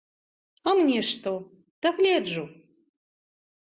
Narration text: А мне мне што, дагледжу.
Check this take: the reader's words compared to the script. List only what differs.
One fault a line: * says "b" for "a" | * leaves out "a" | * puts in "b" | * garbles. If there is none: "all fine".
* leaves out "мне"